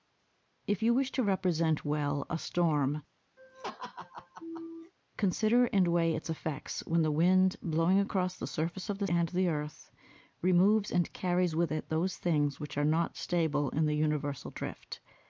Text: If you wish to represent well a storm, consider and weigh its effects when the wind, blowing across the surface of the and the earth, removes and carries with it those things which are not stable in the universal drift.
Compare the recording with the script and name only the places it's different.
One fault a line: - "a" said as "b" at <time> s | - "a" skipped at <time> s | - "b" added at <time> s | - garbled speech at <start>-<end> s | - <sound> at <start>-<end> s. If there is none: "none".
- laugh at 3.4-4.9 s